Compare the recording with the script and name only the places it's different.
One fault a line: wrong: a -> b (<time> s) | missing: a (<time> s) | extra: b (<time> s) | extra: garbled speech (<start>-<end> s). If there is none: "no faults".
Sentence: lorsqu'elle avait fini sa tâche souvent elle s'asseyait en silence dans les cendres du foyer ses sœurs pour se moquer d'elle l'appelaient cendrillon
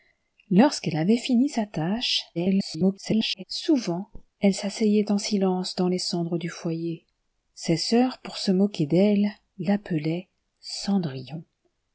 extra: garbled speech (2.3-3.4 s)